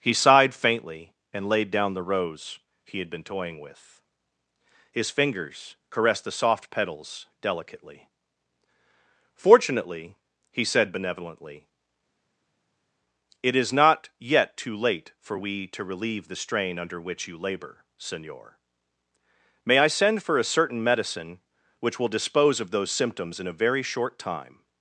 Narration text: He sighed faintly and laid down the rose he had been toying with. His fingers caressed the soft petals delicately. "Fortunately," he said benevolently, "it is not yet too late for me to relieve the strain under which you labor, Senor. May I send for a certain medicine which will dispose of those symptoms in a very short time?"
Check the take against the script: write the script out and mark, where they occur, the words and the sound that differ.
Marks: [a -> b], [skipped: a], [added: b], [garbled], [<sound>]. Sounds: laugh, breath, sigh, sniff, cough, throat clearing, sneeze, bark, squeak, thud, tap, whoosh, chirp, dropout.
He sighed faintly and laid down the rose he had been toying with. His fingers caressed the soft petals delicately. "Fortunately," he said benevolently, "it is not yet too late for [me -> we] to relieve the strain under which you labor, Senor. May I send for a certain medicine which will dispose of those symptoms in a very short time?"